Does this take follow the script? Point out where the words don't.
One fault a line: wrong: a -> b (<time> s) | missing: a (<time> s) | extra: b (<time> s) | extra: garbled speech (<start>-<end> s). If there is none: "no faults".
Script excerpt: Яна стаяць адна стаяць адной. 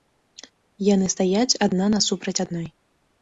wrong: Яна -> Яны (0.9 s)
wrong: стаяць -> насупраць (2.0 s)